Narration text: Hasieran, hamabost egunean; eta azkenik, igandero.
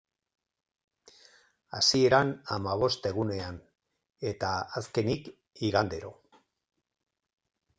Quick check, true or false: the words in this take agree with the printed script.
true